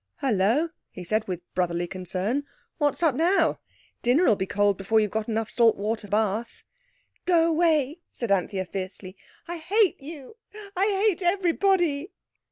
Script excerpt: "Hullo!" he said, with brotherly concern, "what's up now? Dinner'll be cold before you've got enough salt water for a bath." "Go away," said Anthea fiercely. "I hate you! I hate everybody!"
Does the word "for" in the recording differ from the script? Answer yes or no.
yes